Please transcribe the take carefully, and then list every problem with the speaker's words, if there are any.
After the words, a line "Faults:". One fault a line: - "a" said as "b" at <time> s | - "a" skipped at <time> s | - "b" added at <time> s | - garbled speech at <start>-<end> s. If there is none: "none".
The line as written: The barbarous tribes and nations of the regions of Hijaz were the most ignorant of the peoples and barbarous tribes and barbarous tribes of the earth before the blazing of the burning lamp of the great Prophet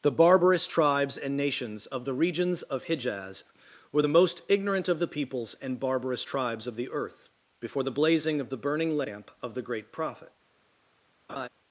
The barbarous tribes and nations of the regions of Hijaz were the most ignorant of the peoples and barbarous tribes of the earth before the blazing of the burning lamp of the great Prophet
Faults:
- "and barbarous tribes" skipped at 6.7 s